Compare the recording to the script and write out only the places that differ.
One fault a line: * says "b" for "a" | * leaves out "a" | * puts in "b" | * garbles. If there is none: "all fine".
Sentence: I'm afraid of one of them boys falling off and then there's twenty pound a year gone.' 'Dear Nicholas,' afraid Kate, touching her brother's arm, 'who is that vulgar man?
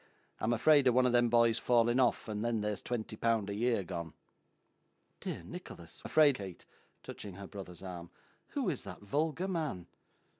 all fine